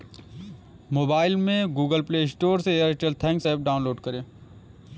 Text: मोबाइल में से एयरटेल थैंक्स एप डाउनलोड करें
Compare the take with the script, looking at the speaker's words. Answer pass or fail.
fail